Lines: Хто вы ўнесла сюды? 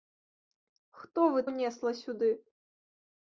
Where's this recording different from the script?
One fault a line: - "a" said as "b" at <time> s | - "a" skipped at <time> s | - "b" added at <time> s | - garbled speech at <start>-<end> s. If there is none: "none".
none